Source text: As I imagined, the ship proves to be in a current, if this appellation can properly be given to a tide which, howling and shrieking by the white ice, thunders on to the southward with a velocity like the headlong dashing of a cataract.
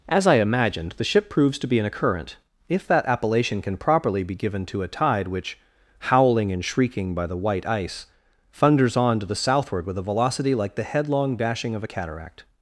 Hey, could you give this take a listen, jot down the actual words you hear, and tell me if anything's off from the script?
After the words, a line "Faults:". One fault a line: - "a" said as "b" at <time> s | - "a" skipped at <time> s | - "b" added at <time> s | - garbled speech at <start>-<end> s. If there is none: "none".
As I imagined, the ship proves to be in a current, if that appellation can properly be given to a tide which, howling and shrieking by the white ice, thunders on to the southward with a velocity like the headlong dashing of a cataract.
Faults:
- "this" said as "that" at 2.9 s